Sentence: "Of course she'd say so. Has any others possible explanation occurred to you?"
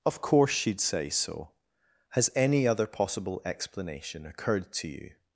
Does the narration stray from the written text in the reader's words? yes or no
yes